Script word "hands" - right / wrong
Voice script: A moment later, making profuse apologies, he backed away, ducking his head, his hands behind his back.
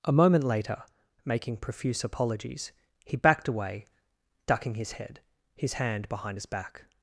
wrong